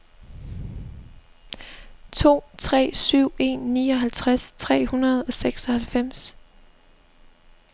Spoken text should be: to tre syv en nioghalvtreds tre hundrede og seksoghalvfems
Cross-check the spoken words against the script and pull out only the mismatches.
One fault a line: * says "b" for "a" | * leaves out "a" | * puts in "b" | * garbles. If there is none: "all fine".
all fine